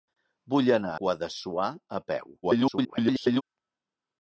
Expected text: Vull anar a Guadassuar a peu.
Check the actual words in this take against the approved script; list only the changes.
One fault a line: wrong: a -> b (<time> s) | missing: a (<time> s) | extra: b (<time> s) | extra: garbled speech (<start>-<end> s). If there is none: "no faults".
missing: a (0.9 s)
extra: garbled speech (2.4-3.4 s)